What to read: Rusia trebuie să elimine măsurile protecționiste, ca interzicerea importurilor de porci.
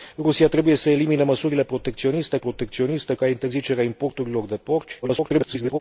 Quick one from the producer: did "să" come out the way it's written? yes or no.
yes